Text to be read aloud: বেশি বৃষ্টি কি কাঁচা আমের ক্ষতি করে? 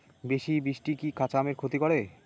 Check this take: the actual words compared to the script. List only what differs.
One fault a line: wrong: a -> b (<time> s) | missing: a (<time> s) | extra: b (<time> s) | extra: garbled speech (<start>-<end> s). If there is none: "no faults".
no faults